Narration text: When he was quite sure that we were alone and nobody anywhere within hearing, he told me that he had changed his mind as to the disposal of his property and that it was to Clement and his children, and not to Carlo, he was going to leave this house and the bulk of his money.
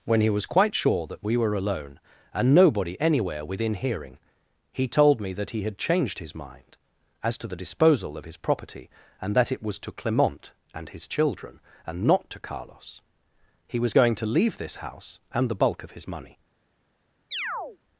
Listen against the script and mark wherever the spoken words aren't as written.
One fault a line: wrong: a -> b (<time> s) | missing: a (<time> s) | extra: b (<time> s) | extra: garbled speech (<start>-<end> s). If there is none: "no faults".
wrong: Carlo -> Carlos (12.4 s)